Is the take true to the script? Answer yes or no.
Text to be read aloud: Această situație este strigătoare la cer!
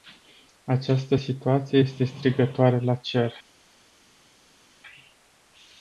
yes